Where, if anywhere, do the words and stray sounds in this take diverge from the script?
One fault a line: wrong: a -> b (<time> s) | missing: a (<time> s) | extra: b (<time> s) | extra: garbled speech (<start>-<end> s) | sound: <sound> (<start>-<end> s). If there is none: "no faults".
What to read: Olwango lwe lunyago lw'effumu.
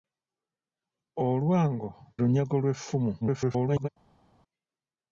missing: lwe (1.9 s)
extra: garbled speech (3.2-3.9 s)